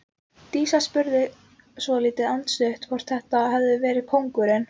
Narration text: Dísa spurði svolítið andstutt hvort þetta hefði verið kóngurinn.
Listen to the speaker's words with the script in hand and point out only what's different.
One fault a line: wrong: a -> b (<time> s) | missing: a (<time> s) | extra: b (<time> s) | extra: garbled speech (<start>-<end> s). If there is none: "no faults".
no faults